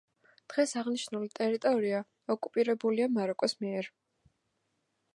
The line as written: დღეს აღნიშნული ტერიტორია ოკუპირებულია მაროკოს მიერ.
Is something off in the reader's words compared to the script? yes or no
no